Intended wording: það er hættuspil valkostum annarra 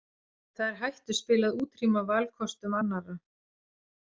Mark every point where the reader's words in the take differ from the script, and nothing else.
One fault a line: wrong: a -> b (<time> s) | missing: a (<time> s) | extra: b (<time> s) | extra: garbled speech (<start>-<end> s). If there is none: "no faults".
extra: að útrýma (1.5 s)